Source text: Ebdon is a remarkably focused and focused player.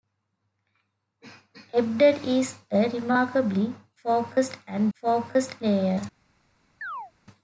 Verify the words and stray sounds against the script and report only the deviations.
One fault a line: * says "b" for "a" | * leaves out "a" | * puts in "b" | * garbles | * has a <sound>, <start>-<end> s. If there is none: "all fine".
* has a chirp, 6.8-7.1 s